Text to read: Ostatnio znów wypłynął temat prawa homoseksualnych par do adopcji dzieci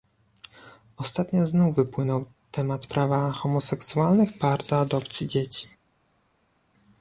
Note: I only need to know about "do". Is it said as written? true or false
true